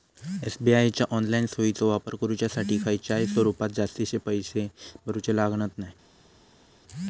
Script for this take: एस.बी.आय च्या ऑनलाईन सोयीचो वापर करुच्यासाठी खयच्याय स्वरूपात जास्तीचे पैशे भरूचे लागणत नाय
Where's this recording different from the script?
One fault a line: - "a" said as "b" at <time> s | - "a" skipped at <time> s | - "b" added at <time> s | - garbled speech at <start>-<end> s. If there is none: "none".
none